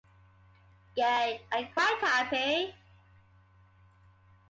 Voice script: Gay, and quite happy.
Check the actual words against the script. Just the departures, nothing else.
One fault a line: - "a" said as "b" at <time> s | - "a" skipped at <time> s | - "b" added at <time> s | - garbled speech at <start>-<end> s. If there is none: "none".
none